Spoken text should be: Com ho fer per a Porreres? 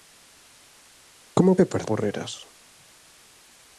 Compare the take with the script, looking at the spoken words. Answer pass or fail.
pass